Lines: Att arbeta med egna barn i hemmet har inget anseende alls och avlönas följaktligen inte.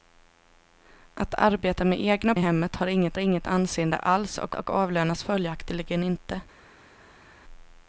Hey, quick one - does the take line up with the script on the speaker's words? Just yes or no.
no